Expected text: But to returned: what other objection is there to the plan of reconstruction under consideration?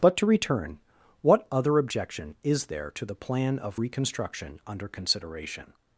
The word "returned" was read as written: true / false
false